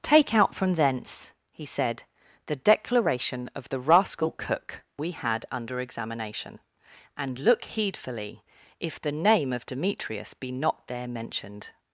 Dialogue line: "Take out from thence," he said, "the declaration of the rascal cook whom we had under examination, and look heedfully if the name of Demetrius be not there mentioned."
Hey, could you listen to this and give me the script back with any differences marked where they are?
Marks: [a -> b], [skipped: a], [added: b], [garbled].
"Take out from thence," he said, "the declaration of the rascal cook [skipped: whom] we had under examination, and look heedfully if the name of Demetrius be not there mentioned."